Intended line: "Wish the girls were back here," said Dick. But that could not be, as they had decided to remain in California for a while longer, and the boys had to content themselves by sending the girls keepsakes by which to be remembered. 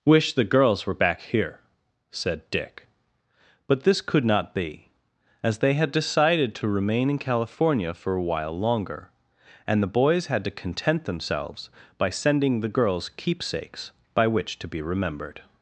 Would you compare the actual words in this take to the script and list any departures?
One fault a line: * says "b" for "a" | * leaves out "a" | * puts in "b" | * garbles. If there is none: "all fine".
* says "this" for "that"